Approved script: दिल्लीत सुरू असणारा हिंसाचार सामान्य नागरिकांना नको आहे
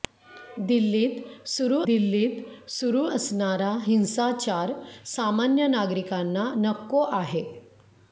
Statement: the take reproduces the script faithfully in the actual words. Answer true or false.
false